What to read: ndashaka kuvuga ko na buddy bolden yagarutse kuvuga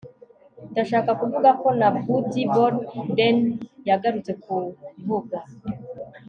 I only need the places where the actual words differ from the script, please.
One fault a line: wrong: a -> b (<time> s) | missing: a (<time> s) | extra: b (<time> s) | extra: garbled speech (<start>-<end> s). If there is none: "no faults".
no faults